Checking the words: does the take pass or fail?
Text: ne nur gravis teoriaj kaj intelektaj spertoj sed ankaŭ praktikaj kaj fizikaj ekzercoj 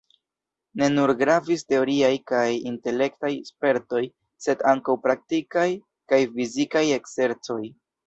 pass